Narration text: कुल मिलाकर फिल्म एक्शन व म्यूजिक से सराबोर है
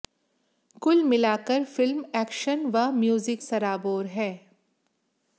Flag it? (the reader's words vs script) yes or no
yes